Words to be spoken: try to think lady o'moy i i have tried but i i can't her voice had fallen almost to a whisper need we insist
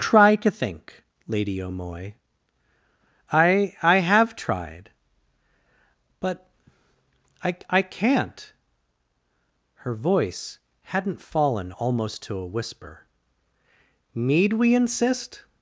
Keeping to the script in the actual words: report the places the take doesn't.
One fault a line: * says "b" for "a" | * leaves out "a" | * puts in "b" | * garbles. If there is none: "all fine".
* says "hadn't" for "had"